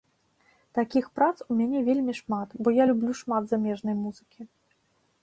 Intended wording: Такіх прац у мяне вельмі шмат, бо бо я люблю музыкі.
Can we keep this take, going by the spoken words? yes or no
no